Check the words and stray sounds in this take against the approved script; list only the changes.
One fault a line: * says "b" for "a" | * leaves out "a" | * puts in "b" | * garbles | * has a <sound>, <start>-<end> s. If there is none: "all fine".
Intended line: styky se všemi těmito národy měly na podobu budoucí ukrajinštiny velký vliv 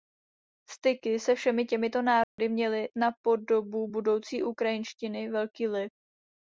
* has a dropout, 2.2-2.4 s